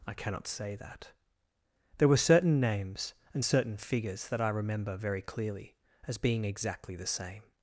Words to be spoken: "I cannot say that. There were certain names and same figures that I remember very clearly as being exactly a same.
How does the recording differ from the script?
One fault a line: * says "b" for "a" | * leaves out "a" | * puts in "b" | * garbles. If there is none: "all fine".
* says "certain" for "same"
* says "the" for "a"